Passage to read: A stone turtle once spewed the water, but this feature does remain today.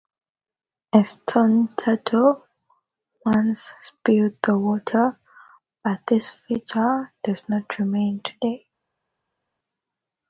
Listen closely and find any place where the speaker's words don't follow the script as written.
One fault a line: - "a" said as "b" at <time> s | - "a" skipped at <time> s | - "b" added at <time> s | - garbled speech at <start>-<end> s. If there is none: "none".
- "not" added at 7.5 s